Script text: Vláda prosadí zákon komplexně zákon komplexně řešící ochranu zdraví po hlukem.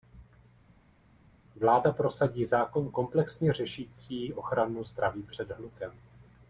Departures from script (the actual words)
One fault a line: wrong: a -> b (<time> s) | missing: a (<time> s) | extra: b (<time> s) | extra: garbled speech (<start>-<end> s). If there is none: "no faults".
missing: zákon komplexně (3.5 s)
wrong: po -> před (5.2 s)